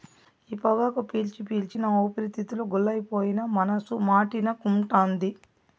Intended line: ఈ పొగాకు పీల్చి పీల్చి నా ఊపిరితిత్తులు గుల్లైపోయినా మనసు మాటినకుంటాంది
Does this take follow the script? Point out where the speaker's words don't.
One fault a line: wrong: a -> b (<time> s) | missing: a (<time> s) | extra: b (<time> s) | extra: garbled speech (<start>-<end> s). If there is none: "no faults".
no faults